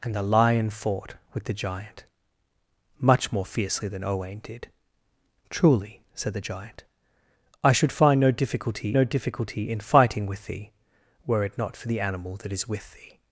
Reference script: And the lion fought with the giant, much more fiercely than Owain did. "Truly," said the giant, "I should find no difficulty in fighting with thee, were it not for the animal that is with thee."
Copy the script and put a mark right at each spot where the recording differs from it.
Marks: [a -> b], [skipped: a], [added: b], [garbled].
And the lion fought with the giant, much more fiercely than Owain did. "Truly," said the giant, "I should find no difficulty [added: no difficulty] in fighting with thee, were it not for the animal that is with thee."